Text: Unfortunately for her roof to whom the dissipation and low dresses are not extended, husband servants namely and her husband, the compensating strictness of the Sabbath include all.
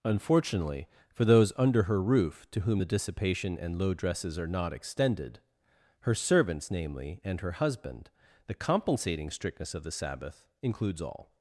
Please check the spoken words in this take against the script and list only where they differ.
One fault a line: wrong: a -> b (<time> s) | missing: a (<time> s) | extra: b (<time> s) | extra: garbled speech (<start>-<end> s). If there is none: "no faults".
extra: those under (1.2 s)
wrong: husband -> her (6.0 s)
wrong: include -> includes (10.6 s)